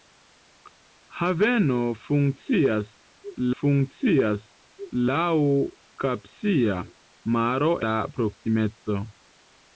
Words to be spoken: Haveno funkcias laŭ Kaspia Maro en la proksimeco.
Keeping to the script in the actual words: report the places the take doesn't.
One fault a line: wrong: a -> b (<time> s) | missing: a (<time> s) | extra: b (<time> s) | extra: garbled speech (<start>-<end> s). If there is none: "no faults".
extra: funkcias (3.6 s)
missing: en (7.7 s)